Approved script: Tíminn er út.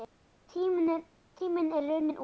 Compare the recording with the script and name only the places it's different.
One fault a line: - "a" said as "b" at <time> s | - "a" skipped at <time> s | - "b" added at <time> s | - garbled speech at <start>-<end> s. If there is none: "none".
- "runninn" added at 1.9 s